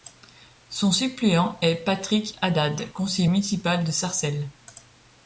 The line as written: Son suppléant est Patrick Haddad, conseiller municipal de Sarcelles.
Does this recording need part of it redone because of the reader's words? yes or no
no